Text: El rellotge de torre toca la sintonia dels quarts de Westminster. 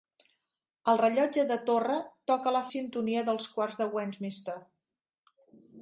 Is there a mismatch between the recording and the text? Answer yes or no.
no